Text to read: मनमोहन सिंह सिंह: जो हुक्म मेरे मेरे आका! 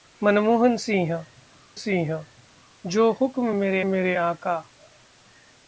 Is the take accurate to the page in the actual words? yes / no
yes